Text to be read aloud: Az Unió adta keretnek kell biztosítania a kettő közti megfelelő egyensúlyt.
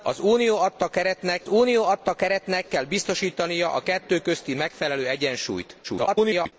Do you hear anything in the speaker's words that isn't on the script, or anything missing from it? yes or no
yes